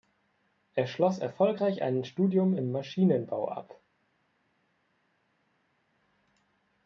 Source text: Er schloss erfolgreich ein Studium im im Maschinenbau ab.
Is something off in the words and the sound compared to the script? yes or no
yes